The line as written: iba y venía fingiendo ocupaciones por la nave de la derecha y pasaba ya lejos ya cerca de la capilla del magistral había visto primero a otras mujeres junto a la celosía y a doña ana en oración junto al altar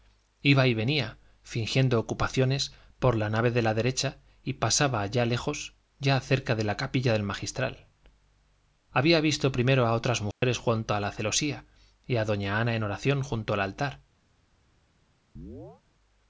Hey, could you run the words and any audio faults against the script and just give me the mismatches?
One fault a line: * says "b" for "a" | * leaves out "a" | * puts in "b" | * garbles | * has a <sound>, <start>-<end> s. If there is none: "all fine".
* has a dropout, 10.3-10.4 s
* has a chirp, 15.4-15.8 s